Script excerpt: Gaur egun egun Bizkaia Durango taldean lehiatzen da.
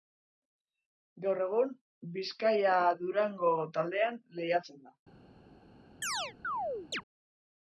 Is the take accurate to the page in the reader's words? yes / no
no